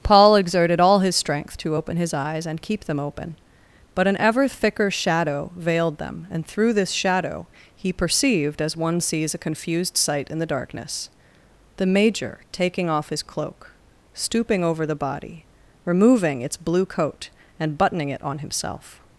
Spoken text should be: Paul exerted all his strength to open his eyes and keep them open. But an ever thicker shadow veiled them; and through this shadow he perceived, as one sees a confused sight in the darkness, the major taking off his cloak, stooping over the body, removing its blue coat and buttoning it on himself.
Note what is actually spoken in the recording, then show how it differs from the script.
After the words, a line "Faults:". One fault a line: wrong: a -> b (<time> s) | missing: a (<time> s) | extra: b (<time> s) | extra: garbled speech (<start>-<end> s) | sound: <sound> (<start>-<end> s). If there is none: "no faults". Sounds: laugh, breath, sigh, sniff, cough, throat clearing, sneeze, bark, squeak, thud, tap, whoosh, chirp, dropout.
Paul exerted all his strength to open his eyes and keep them open. But an ever thicker shadow veiled them; and through this shadow he perceived, as one sees a confused sight in the darkness, the major taking off his cloak, stooping over the body, removing its blue coat and buttoning it on himself.
Faults:
no faults